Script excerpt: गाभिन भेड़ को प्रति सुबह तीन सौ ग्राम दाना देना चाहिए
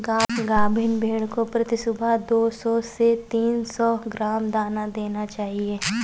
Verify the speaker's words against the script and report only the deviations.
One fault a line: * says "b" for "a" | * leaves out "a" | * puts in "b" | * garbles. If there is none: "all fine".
* puts in "दो सौ से"